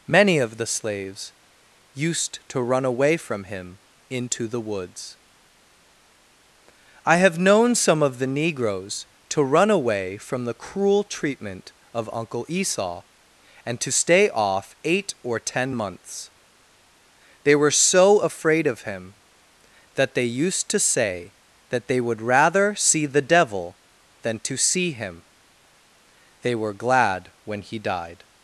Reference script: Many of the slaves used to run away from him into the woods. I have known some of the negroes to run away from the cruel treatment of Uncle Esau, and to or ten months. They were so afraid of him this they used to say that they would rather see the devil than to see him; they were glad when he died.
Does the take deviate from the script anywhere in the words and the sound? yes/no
yes